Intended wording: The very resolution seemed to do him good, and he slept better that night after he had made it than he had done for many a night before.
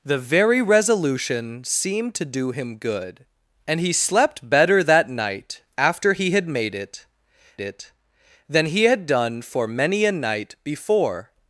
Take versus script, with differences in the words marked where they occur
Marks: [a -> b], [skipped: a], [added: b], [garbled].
The very resolution seemed to do him good, and he slept better that night after he had made it [added: it] than he had done for many a night before.